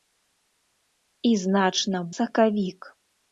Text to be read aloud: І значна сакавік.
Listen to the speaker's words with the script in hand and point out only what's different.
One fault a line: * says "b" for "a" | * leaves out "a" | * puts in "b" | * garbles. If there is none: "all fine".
all fine